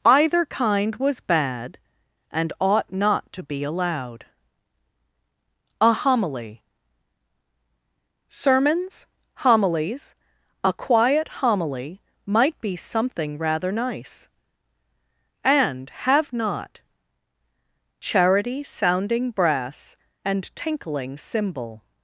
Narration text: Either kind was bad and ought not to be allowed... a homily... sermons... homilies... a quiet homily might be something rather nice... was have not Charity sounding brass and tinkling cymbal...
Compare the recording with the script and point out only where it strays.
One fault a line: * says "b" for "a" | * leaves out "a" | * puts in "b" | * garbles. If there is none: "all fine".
* says "and" for "was"